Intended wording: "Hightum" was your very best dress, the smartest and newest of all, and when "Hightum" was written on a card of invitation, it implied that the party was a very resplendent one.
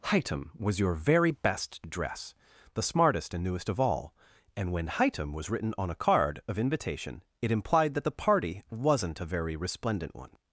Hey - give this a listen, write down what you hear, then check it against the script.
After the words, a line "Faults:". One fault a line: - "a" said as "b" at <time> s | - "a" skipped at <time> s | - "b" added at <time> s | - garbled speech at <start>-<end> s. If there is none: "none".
"Hightum" was your very best dress, the smartest and newest of all, and when "Hightum" was written on a card of invitation, it implied that the party wasn't a very resplendent one.
Faults:
- "was" said as "wasn't" at 8.7 s